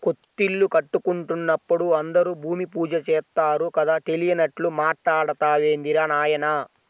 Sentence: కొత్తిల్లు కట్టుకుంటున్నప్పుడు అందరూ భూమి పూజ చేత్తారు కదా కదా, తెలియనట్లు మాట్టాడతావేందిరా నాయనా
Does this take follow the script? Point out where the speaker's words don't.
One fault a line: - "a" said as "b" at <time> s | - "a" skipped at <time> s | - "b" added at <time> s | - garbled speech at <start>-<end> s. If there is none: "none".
- "కదా" skipped at 4.0 s